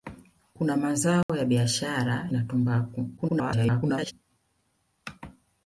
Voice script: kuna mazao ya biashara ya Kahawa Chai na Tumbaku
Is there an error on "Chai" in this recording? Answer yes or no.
yes